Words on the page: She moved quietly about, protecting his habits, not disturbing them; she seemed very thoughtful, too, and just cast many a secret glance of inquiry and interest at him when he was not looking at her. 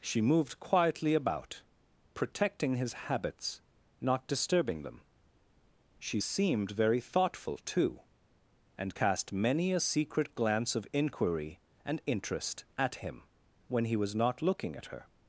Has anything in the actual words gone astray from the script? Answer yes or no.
yes